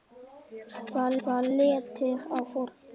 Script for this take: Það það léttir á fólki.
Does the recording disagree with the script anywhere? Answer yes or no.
no